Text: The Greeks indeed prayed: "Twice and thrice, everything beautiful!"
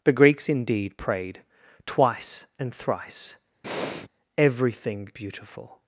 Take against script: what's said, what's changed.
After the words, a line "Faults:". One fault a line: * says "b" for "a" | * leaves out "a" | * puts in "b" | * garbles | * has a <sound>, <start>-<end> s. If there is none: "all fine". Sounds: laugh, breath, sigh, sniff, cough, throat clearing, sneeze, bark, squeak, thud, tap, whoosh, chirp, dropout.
The Greeks indeed prayed: "Twice and thrice, everything beautiful!"
Faults:
* has a breath, 3.6-4.1 s